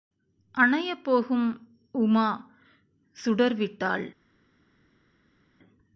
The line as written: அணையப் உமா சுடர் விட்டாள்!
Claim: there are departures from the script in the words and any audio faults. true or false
true